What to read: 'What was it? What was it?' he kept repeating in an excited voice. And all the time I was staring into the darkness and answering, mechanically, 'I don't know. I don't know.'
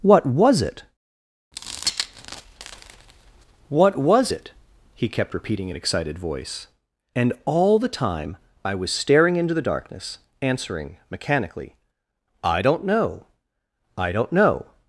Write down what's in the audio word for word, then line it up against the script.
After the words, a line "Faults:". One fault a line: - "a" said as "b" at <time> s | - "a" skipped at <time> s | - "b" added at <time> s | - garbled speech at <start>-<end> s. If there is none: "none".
'What was it? What was it?' he kept repeating in excited voice. And all the time I was staring into the darkness answering, mechanically, 'I don't know. I don't know.'
Faults:
- "an" skipped at 5.8 s
- "and" skipped at 10.2 s